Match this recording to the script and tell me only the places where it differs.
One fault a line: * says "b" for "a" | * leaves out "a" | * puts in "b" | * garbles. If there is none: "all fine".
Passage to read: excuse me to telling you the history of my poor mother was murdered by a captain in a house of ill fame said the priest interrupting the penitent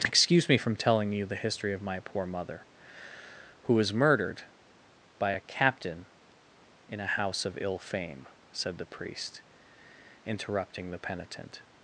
* says "from" for "to"
* puts in "who"